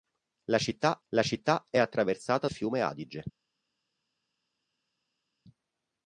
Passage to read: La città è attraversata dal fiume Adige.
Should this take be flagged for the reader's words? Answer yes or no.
yes